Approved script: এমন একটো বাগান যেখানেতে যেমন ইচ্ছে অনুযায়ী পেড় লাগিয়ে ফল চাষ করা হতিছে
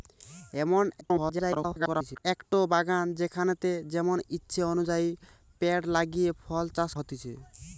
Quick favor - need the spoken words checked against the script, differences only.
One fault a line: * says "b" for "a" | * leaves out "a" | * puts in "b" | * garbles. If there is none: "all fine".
* garbles
* leaves out "করা"